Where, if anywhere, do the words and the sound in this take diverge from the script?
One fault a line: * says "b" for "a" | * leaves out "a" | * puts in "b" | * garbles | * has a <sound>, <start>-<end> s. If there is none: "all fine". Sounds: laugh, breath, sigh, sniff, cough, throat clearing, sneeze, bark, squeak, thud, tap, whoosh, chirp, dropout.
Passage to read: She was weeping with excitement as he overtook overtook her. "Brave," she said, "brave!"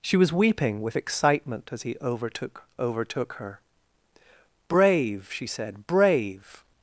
all fine